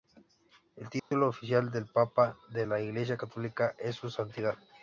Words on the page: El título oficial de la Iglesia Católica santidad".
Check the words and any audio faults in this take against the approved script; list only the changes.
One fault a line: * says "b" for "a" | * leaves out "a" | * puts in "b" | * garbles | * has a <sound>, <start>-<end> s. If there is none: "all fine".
* has a dropout, 1.0-1.1 s
* puts in "del papa"
* puts in "es su"